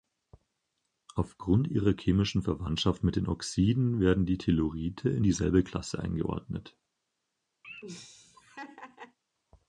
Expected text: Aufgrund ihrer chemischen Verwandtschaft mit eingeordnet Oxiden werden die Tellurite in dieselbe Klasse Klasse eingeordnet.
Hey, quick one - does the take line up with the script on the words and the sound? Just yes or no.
no